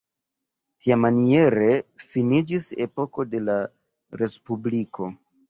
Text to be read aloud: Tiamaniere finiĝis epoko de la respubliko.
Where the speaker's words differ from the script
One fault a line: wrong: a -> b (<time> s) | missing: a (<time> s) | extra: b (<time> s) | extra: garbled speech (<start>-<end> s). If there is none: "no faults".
no faults